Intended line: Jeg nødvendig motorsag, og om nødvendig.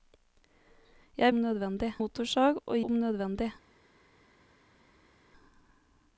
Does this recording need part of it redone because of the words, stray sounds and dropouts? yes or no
no